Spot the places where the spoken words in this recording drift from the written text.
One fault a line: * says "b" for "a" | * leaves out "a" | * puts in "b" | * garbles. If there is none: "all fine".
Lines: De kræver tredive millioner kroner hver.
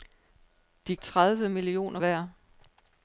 * leaves out "kræver"
* leaves out "kroner"